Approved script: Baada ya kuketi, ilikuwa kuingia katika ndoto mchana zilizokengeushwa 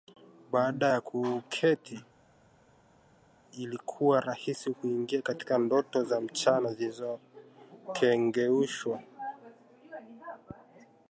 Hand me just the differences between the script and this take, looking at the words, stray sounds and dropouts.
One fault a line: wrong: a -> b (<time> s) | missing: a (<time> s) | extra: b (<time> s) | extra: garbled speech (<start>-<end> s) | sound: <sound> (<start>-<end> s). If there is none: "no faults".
extra: rahisi (4.2 s)
extra: za (6.0 s)